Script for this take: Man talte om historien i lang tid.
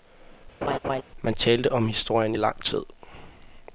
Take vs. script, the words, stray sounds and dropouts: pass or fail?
fail